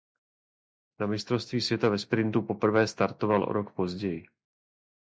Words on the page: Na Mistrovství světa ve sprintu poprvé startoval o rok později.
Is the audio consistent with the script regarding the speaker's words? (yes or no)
yes